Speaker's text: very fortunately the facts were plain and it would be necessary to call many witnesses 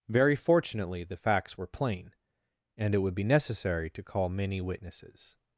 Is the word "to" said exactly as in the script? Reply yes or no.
yes